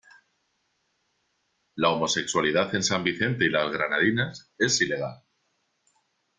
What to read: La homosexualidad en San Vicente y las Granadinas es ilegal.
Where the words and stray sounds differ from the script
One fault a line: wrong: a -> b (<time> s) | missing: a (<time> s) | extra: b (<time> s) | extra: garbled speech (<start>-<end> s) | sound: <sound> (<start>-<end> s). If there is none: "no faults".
no faults